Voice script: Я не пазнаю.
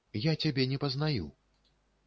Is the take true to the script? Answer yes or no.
no